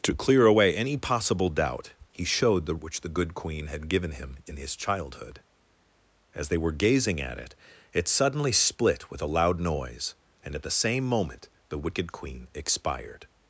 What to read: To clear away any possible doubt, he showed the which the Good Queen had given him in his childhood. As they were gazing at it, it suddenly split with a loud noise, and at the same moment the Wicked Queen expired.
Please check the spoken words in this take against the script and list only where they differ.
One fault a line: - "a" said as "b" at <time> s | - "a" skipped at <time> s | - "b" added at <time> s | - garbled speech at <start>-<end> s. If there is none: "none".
none